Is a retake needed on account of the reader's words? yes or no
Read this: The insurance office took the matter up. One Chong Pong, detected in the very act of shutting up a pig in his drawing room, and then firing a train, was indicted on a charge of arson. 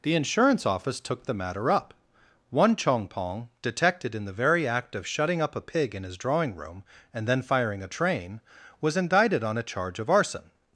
no